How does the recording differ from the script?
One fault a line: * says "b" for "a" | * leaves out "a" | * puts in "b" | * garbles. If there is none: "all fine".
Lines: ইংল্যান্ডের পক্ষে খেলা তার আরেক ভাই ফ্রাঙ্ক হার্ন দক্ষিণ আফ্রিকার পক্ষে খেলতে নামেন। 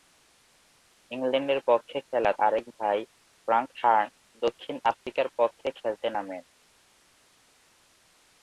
* leaves out "তার"